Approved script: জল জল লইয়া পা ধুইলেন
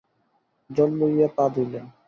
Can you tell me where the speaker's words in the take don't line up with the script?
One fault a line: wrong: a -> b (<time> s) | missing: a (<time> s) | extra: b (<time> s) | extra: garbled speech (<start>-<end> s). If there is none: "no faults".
missing: জল (0.9 s)